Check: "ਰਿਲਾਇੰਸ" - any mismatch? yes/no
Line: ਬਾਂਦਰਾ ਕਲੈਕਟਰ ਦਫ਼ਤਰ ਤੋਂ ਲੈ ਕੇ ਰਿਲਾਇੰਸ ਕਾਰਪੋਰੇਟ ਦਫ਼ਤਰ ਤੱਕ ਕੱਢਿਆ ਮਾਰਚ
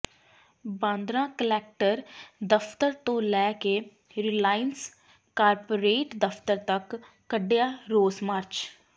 no